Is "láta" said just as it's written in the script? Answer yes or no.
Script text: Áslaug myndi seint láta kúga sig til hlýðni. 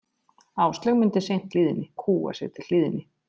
no